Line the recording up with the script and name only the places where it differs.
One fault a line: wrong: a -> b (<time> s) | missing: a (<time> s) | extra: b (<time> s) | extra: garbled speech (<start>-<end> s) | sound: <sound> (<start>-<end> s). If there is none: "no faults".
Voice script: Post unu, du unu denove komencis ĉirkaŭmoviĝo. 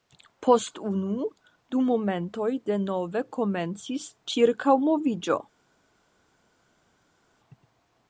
wrong: unu -> momentoj (1.9 s)